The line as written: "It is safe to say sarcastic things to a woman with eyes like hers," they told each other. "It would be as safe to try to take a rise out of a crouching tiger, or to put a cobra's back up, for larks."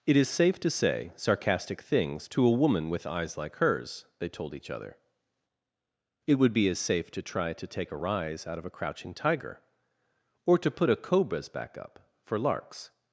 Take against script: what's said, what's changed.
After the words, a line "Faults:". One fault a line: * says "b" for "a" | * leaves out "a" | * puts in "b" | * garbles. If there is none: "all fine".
"It is safe to say sarcastic things to a woman with eyes like hers," they told each other. "It would be as safe to try to take a rise out of a crouching tiger, or to put a cobra's back up, for larks."
Faults:
all fine